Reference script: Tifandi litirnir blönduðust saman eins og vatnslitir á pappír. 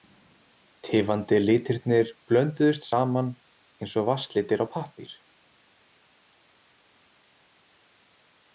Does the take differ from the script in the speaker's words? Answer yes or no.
no